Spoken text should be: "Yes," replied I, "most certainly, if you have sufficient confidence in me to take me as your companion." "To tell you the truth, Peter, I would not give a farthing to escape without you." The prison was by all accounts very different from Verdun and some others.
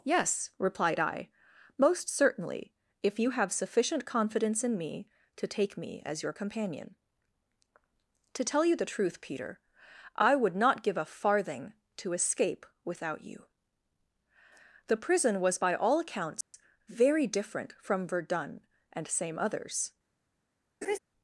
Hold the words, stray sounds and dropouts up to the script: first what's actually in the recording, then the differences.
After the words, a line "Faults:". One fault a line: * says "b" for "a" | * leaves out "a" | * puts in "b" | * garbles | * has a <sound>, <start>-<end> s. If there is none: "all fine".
"Yes," replied I, "most certainly, if you have sufficient confidence in me to take me as your companion." "To tell you the truth, Peter, I would not give a farthing to escape without you." The prison was by all accounts very different from Verdun and same others.
Faults:
* has a dropout, 16.4-16.5 s
* says "same" for "some"
* has a laugh, 20.8-21.0 s